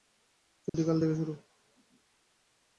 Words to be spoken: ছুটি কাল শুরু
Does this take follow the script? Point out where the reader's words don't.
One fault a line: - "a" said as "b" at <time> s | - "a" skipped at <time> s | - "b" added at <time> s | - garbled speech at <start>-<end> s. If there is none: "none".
- "থেকে" added at 1.0 s